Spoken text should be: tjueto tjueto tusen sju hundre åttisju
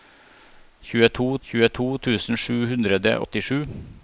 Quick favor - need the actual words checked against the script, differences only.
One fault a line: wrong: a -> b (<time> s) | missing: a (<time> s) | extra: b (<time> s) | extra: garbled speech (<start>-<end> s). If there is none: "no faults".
no faults